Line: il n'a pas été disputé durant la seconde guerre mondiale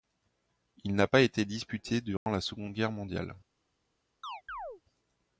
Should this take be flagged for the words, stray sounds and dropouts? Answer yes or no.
yes